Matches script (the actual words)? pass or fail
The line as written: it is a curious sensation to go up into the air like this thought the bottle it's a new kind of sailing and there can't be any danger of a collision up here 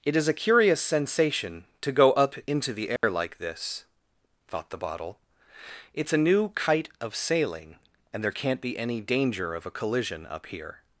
fail